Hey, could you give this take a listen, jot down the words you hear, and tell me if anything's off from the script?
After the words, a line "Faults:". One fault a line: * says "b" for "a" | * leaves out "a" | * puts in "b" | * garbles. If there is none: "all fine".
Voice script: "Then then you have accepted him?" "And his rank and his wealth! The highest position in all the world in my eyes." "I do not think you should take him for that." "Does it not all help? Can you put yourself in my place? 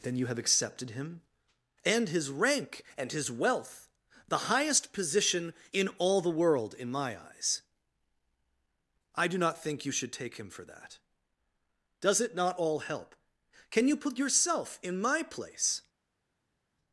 "Then you have accepted him?" "And his rank and his wealth! The highest position in all the world in my eyes." "I do not think you should take him for that." "Does it not all help? Can you put yourself in my place?
Faults:
* leaves out "then"